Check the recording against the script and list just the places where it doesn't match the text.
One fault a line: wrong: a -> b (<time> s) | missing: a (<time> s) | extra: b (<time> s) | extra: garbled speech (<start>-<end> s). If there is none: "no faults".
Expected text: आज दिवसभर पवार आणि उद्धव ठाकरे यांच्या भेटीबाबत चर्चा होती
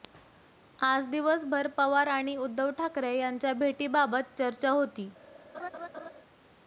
no faults